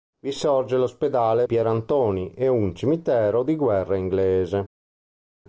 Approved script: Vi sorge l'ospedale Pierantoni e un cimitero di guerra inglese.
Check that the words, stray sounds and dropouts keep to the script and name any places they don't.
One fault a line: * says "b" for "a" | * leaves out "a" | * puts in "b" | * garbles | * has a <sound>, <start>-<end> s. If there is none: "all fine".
all fine